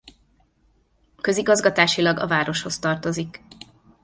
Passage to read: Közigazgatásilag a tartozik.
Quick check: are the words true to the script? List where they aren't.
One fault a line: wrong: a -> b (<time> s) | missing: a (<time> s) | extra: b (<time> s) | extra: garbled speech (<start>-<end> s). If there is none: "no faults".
extra: városhoz (2.3 s)